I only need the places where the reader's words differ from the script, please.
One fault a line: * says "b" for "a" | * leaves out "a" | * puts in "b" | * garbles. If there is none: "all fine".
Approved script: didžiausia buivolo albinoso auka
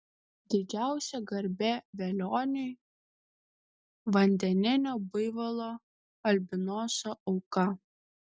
* puts in "garbė velioniui vandeninio"